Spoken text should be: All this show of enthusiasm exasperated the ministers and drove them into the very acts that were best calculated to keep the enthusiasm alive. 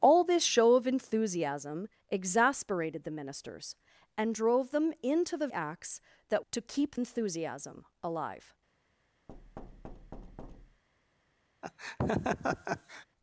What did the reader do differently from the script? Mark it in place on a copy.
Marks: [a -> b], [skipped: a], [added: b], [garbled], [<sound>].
All this show of enthusiasm exasperated the ministers and drove them into the [skipped: very] acts that [skipped: were best calculated] to keep [skipped: the] enthusiasm alive. [thud] [laugh]